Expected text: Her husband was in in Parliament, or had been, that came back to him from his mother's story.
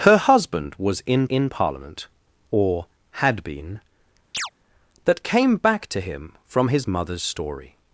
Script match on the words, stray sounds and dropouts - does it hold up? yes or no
no